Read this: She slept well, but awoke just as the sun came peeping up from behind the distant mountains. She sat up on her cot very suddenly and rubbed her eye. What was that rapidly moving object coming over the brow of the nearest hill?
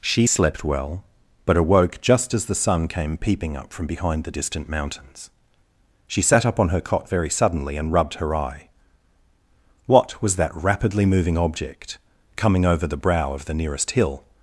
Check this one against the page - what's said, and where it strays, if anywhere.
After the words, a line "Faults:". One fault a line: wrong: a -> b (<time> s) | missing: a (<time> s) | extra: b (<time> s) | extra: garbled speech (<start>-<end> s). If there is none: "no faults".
She slept well, but awoke just as the sun came peeping up from behind the distant mountains. She sat up on her cot very suddenly and rubbed her eye. What was that rapidly moving object coming over the brow of the nearest hill?
Faults:
no faults